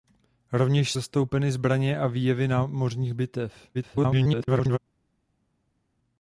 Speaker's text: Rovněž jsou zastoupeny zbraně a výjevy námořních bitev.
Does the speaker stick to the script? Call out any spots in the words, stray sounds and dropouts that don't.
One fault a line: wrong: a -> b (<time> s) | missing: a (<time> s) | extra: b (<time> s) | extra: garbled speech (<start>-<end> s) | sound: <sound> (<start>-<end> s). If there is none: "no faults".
missing: jsou (0.9 s)
extra: garbled speech (3.7-4.8 s)